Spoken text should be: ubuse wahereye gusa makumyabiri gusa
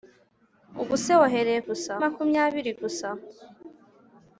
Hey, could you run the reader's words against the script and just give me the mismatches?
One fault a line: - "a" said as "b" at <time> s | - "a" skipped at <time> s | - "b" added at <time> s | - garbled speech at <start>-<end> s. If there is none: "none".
none